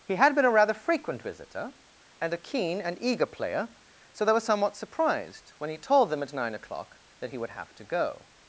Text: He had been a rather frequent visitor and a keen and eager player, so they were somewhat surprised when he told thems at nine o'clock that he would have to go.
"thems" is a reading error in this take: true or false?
true